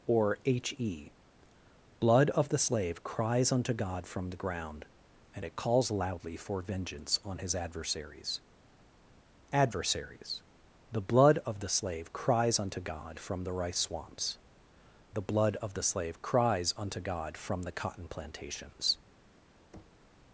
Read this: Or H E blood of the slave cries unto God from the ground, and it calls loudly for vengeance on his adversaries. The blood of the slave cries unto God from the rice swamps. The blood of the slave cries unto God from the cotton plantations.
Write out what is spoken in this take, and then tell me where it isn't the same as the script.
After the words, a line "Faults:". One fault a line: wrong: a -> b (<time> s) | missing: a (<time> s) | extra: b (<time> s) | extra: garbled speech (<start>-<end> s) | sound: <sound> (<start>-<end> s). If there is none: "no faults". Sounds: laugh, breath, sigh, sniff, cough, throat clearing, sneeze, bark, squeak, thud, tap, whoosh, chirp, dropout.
Or H E blood of the slave cries unto God from the ground, and it calls loudly for vengeance on his adversaries adversaries. The blood of the slave cries unto God from the rice swamps. The blood of the slave cries unto God from the cotton plantations.
Faults:
extra: adversaries (9.5 s)
sound: thud (19.7-20.1 s)